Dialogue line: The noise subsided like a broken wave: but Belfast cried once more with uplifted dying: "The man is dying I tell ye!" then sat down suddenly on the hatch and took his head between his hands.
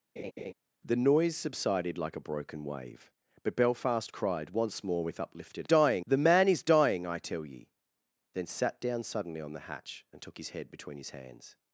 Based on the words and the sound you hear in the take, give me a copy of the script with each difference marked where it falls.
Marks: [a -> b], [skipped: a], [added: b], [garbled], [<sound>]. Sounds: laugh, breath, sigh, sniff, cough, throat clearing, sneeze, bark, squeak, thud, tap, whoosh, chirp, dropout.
[laugh] The noise subsided like a broken wave: but Belfast cried once more with uplifted dying: "The man is dying I tell ye!" then sat down suddenly on the hatch and took his head between his hands.